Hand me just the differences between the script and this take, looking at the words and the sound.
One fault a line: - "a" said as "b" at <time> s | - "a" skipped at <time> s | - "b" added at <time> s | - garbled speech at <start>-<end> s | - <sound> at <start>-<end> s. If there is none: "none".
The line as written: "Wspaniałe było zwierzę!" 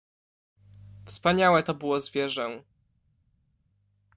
- "to" added at 1.6 s